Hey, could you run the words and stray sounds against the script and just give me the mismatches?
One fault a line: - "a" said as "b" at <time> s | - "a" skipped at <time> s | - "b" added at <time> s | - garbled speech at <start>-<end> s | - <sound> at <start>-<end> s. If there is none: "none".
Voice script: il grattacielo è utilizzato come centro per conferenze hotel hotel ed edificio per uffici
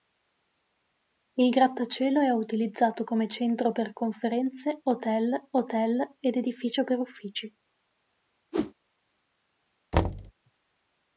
- whoosh at 8.5-8.7 s
- thud at 9.9-10.3 s